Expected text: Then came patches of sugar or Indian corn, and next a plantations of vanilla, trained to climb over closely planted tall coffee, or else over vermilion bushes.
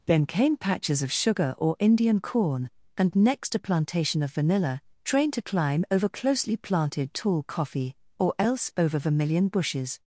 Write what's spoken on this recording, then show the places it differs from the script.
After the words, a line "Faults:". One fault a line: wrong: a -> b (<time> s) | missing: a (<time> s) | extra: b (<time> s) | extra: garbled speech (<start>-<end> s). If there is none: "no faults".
Then came patches of sugar or Indian corn, and next a plantation of vanilla, trained to climb over closely planted tall coffee, or else over vermilion bushes.
Faults:
wrong: plantations -> plantation (3.6 s)